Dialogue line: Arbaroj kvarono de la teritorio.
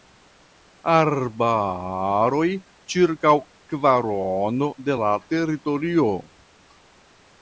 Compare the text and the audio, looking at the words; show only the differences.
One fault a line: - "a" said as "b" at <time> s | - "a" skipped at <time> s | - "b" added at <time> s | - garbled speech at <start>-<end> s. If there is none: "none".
- "ĉirkaŭ" added at 2.9 s